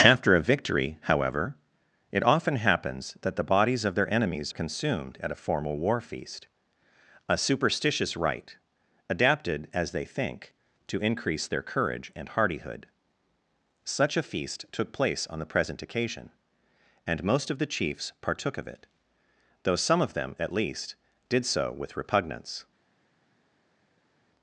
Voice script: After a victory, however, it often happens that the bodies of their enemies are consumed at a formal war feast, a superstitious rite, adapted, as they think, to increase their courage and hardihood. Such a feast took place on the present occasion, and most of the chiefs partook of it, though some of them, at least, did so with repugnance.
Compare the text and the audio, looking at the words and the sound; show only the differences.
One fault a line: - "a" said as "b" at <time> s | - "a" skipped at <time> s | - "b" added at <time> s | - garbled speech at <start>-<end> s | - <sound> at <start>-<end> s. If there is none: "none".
- "are" skipped at 4.5 s